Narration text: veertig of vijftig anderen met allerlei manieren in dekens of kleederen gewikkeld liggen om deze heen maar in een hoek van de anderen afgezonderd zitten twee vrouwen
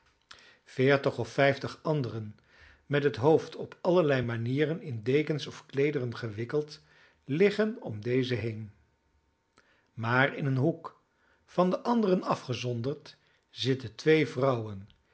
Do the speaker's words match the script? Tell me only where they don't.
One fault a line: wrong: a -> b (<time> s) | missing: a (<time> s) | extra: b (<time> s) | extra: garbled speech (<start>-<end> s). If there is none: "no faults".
extra: het hoofd op (3.0 s)